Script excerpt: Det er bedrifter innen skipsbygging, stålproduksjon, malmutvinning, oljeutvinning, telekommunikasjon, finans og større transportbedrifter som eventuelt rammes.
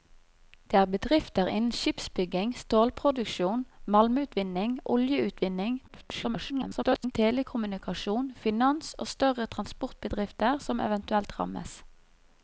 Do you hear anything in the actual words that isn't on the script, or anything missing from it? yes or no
yes